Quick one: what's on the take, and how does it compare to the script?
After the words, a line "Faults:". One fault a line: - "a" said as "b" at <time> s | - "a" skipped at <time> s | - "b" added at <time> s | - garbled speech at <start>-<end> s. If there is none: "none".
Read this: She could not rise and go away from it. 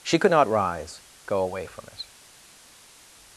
She could not rise go away from it.
Faults:
- "and" skipped at 1.0 s